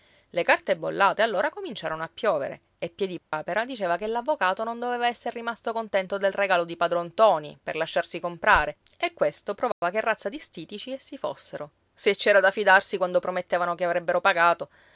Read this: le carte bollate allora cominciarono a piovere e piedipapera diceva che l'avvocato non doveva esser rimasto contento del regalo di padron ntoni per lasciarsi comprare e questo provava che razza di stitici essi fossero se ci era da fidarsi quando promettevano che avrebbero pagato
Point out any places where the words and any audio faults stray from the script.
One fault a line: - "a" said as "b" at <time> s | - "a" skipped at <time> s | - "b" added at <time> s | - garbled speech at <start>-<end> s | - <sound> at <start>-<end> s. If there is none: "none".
- dropout at 3.2-3.3 s
- dropout at 9.7-9.8 s